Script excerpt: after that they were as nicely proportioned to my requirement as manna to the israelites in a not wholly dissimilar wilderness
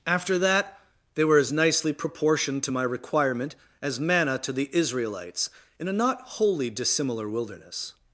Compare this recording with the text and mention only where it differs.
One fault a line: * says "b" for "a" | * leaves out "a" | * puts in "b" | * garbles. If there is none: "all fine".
all fine